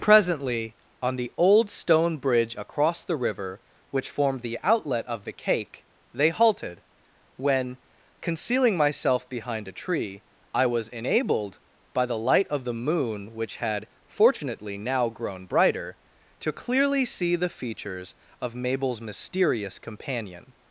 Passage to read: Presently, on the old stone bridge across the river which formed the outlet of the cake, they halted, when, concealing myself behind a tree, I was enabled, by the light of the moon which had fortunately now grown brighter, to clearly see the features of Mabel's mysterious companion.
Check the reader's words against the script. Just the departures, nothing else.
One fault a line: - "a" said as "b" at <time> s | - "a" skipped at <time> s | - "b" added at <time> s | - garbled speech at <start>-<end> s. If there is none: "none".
none